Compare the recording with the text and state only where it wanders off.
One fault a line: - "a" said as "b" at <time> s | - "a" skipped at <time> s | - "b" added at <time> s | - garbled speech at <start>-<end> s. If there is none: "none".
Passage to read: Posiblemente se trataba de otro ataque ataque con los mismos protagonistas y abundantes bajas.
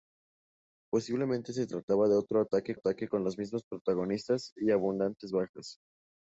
none